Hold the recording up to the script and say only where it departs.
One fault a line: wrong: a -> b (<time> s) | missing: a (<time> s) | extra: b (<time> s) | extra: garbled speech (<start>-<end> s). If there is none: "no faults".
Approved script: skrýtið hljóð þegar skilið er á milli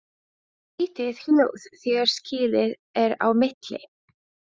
no faults